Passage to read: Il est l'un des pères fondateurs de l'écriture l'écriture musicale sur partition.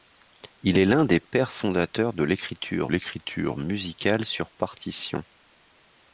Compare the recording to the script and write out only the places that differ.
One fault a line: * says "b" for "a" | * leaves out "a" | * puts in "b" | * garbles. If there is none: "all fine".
all fine